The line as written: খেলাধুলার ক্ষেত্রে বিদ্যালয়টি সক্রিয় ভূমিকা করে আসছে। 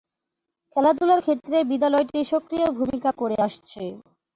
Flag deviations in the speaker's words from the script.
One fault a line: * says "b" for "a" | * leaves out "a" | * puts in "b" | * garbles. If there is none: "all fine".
all fine